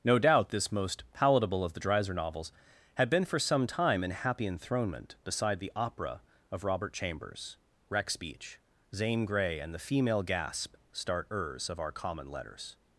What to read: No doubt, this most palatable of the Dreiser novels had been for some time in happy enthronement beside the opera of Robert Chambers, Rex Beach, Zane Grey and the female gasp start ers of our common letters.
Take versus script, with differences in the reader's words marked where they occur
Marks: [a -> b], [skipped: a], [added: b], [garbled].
No doubt, this most palatable of the Dreiser novels had been for some time in happy enthronement beside the opera of Robert Chambers, Rex Beach, Zane Grey and the female gasp start ers of our common letters.